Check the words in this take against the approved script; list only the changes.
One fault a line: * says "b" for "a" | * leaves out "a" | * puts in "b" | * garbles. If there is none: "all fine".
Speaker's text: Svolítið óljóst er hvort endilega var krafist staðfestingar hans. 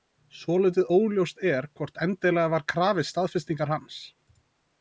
all fine